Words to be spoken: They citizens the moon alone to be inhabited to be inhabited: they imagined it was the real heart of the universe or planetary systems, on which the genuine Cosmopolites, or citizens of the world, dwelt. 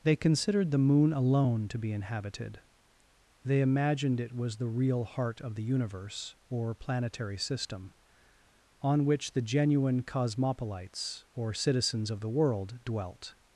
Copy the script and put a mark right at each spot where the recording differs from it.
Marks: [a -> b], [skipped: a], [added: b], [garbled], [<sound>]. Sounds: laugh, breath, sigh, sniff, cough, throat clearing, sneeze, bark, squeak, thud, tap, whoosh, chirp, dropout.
They [citizens -> considered] the moon alone to be inhabited [skipped: to be inhabited:] they imagined it was the real heart of the universe or planetary [systems, -> system] on which the genuine Cosmopolites, or citizens of the world, dwelt.